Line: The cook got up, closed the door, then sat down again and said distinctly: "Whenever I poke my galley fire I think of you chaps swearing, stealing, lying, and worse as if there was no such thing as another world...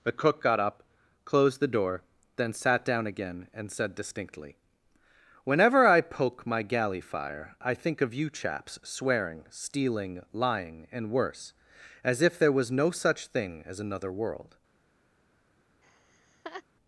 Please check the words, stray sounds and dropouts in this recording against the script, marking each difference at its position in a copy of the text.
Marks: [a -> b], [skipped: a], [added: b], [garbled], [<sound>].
The cook got up, closed the door, then sat down again and said distinctly: "Whenever I poke my galley fire I think of you chaps swearing, stealing, lying, and worse as if there was no such thing as another world... [laugh]